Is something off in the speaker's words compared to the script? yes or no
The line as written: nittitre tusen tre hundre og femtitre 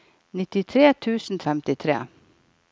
yes